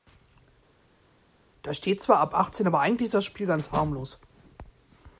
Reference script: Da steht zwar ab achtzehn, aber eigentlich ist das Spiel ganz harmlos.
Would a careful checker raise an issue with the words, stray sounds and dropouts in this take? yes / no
no